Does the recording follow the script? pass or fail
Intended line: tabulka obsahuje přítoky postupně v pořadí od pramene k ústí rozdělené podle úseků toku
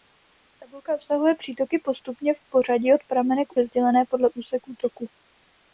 fail